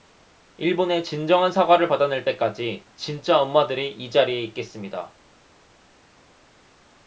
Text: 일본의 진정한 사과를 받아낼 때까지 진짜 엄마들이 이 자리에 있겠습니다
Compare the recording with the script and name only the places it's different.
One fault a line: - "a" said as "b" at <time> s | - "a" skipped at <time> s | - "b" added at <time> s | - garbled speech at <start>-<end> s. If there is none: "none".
none